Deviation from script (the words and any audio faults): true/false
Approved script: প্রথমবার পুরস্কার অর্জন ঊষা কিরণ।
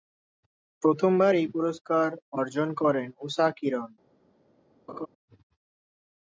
true